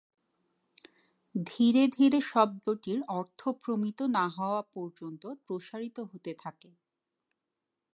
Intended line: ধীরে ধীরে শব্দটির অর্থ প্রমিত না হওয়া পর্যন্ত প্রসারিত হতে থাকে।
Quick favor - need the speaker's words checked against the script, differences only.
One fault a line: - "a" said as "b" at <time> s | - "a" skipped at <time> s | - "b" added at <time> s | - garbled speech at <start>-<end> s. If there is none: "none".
none